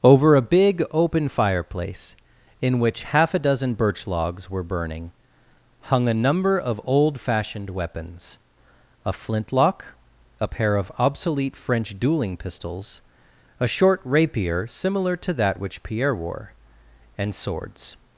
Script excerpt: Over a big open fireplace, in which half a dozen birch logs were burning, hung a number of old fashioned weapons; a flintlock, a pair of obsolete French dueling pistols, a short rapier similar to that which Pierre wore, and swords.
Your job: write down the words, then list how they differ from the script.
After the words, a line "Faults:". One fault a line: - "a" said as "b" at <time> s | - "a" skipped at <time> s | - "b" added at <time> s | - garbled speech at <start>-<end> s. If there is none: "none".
Over a big open fireplace, in which half a dozen birch logs were burning, hung a number of old fashioned weapons; a flintlock, a pair of obsolete French dueling pistols, a short rapier similar to that which Pierre wore, and swords.
Faults:
none